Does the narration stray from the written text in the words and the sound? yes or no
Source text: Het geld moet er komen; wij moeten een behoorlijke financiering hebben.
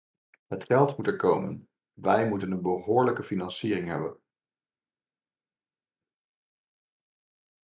no